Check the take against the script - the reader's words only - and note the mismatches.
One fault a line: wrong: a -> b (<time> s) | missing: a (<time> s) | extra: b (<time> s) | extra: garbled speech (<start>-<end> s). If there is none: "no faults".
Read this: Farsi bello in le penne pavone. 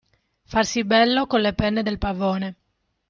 wrong: in -> con (1.3 s)
extra: del (1.8 s)